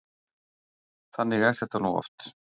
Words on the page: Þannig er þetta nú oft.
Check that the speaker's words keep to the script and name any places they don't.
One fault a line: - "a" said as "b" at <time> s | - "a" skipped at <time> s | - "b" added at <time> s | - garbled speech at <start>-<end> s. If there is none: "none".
none